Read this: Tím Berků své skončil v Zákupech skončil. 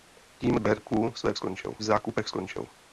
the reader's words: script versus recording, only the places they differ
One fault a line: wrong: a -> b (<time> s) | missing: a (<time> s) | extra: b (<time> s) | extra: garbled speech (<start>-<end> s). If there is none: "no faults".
no faults